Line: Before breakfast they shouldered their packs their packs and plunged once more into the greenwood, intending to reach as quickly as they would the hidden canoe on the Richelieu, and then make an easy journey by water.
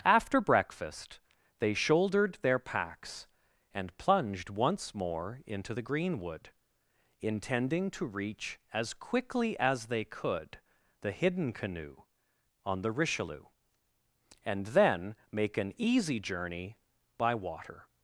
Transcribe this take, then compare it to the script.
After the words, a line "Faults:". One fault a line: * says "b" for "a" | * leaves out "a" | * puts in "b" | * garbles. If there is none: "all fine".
After breakfast they shouldered their packs and plunged once more into the greenwood, intending to reach as quickly as they could the hidden canoe on the Richelieu, and then make an easy journey by water.
Faults:
* says "After" for "Before"
* leaves out "their packs"
* says "could" for "would"